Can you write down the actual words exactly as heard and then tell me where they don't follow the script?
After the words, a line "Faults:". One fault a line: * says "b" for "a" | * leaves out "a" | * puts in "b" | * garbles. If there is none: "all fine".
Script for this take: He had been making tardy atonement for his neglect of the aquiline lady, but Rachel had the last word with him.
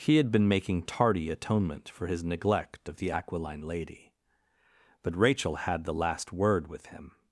He had been making tardy atonement for his neglect of the aquiline lady, but Rachel had the last word with him.
Faults:
all fine